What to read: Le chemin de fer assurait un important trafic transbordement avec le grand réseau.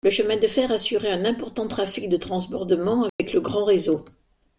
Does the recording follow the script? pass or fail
fail